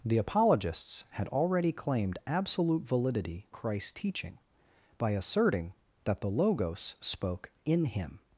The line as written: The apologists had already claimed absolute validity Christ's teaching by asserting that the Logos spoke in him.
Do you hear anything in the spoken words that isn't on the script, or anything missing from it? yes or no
no